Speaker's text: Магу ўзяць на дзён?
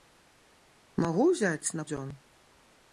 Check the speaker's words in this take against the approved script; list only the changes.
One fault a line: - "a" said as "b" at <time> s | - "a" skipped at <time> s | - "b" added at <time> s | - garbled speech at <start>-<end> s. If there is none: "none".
none